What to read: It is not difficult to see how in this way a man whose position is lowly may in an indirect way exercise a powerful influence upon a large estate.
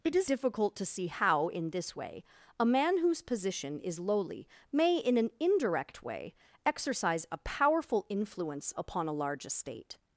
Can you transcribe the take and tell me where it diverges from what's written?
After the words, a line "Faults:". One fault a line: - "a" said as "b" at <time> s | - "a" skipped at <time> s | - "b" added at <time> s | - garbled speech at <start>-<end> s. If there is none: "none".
It is difficult to see how in this way a man whose position is lowly may in an indirect way exercise a powerful influence upon a large estate.
Faults:
- "not" skipped at 0.3 s